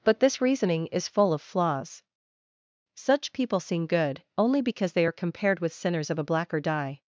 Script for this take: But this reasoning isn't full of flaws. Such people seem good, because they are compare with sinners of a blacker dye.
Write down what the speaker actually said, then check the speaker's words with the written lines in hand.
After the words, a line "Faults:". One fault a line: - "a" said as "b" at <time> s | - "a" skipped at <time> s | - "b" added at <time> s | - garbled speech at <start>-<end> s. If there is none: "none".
But this reasoning is full of flaws. Such people seem good, only because they are compared with sinners of a blacker dye.
Faults:
- "isn't" said as "is" at 0.9 s
- "only" added at 4.4 s
- "compare" said as "compared" at 5.1 s